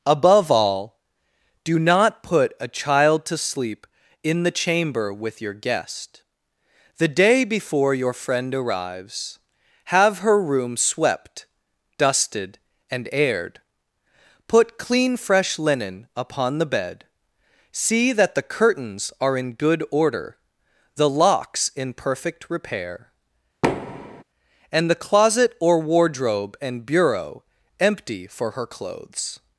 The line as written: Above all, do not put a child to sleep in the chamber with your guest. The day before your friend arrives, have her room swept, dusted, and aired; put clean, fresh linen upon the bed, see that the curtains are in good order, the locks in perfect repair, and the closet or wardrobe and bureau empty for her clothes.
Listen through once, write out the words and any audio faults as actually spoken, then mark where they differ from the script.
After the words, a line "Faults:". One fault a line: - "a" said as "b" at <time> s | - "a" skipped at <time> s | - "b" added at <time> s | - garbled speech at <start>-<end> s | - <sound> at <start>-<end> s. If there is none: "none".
Above all, do not put a child to sleep in the chamber with your guest. The day before your friend arrives, have her room swept, dusted, and aired; put clean, fresh linen upon the bed, see that the curtains are in good order, the locks in perfect repair, and the closet or wardrobe and bureau empty for her clothes.
Faults:
- thud at 23.6-24.2 s